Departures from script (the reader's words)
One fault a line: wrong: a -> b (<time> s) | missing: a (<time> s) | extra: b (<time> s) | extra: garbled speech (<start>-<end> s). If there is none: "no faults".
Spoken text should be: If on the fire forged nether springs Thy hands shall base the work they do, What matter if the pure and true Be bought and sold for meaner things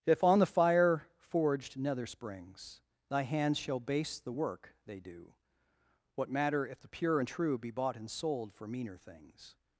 no faults